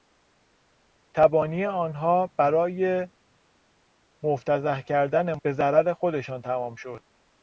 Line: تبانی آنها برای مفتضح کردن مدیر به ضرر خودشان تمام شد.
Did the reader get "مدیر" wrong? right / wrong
wrong